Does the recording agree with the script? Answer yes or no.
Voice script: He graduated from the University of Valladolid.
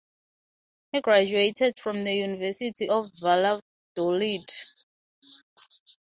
yes